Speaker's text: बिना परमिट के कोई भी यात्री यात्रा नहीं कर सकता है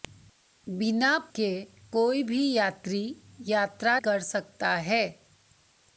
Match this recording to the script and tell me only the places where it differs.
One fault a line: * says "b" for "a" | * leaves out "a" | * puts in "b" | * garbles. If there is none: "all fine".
* leaves out "परमिट"
* leaves out "नहीं"